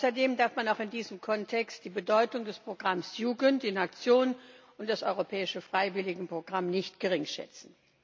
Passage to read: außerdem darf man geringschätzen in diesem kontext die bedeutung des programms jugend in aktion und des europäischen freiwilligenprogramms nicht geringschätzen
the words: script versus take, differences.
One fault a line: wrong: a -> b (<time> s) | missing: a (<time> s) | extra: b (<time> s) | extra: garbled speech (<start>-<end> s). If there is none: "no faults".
wrong: geringschätzen -> auch (0.7 s)